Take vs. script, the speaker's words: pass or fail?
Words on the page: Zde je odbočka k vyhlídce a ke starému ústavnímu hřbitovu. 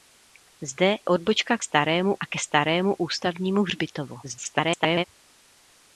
fail